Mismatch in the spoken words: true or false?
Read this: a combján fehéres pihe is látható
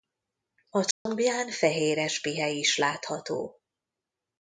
false